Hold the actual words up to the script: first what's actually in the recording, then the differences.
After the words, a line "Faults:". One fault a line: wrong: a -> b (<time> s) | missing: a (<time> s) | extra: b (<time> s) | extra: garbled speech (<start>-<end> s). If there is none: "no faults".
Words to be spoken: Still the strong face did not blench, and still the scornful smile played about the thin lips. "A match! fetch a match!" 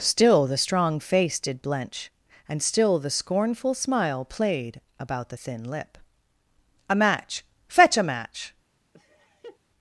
Still the strong face did blench, and still the scornful smile played about the thin lip. "A match! fetch a match!"
Faults:
missing: not (1.6 s)
wrong: lips -> lip (5.6 s)